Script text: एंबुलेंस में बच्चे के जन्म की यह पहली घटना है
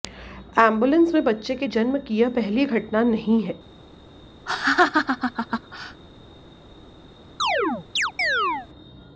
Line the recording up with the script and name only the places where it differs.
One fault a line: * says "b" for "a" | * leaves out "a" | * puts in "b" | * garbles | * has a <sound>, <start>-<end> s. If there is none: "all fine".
* puts in "नहीं"
* has a laugh, 4.5-6.0 s
* has a chirp, 7.4-8.7 s